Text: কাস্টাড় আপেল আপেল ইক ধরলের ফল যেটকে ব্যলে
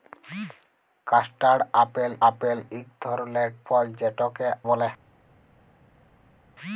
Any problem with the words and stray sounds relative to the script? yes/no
no